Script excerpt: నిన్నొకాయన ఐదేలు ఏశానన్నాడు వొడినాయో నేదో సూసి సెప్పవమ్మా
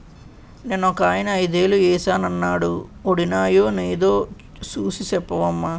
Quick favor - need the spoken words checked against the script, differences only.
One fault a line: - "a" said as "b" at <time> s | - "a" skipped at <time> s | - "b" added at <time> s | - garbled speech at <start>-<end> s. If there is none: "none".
none